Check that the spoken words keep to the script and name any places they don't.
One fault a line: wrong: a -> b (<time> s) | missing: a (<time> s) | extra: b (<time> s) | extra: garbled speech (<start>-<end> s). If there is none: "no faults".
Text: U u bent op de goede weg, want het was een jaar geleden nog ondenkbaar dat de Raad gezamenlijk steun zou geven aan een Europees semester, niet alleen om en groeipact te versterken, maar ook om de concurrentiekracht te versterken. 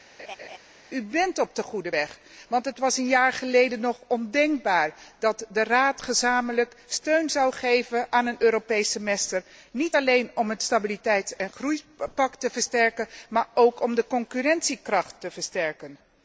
missing: u (1.0 s)
extra: het Stabiliteits (10.5 s)